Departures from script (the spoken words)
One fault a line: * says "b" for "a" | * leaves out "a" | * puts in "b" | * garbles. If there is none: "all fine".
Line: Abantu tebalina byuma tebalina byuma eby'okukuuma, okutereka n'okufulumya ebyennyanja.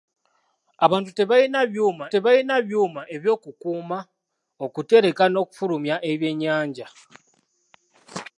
all fine